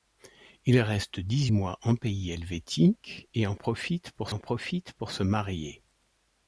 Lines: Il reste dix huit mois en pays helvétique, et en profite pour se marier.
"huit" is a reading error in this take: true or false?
true